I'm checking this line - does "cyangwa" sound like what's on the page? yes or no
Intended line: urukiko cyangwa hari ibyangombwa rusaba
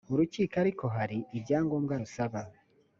no